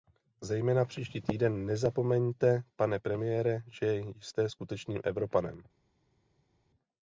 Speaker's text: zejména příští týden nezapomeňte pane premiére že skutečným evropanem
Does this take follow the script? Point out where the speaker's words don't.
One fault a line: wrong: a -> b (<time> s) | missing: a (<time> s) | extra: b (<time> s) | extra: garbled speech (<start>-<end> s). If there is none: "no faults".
extra: jste (4.0 s)